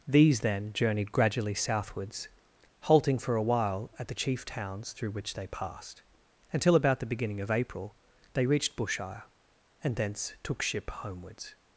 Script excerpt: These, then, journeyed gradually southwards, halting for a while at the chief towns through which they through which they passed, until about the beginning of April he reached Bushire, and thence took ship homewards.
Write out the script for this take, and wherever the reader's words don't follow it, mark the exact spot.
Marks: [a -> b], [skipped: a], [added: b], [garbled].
These, then, journeyed gradually southwards, halting for a while at the chief towns through which they [skipped: through which they] passed, until about the beginning of April [he -> they] reached Bushire, and thence took ship homewards.